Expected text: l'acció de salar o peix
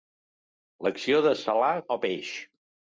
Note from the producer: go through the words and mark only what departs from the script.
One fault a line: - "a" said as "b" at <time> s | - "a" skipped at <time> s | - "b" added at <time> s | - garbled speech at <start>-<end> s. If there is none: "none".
none